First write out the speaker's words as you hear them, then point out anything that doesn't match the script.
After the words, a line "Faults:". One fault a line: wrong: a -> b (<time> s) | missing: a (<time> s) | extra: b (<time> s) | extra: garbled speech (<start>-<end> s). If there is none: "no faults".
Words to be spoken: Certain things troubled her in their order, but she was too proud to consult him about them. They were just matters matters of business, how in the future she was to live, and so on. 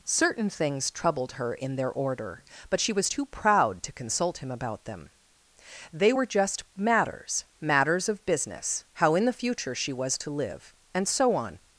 Certain things troubled her in their order, but she was too proud to consult him about them. They were just matters matters of business, how in the future she was to live, and so on.
Faults:
no faults